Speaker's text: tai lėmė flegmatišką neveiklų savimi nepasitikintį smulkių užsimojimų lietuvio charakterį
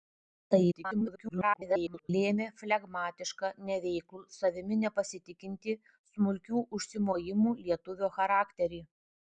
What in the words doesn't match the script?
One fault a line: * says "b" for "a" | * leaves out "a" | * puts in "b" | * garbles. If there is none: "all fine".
* garbles